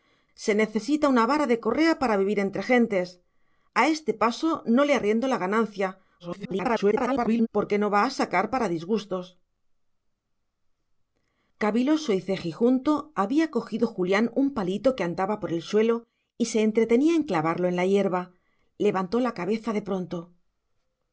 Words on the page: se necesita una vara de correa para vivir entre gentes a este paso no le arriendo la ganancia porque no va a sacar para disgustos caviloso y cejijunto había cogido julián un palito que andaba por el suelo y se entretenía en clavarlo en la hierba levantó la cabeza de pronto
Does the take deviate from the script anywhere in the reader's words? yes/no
yes